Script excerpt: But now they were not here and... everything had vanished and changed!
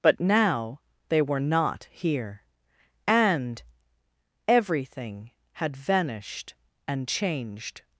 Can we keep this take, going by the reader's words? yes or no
yes